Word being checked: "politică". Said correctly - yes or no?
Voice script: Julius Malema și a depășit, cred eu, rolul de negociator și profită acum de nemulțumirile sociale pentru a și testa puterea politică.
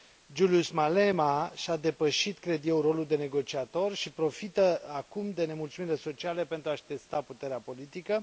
yes